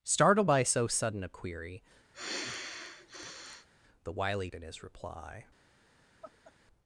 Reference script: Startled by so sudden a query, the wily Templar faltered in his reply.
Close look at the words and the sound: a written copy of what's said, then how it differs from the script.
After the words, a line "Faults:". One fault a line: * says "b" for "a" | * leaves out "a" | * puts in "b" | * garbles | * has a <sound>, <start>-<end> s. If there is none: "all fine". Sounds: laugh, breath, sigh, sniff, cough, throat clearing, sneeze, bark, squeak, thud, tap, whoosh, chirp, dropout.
Startled by so sudden a query, the wily In his reply.
Faults:
* has a sigh, 2.1-3.7 s
* leaves out "Templar faltered"
* has a laugh, 6.2-6.5 s